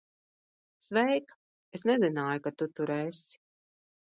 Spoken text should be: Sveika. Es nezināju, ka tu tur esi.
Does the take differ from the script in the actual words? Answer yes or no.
no